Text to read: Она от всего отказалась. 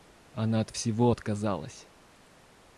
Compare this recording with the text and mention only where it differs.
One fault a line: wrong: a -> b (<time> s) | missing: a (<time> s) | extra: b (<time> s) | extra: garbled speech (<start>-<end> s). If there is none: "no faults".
no faults